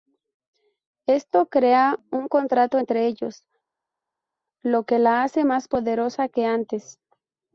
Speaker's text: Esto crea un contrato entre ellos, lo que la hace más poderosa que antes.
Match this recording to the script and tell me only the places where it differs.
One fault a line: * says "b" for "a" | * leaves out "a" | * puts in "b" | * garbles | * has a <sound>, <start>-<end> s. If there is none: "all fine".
all fine